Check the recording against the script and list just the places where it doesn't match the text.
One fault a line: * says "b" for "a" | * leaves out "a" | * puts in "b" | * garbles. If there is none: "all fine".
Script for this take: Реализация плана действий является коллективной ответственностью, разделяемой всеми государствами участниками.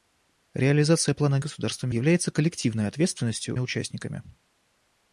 * says "государствами" for "действий"
* leaves out "разделяемой всеми государствами"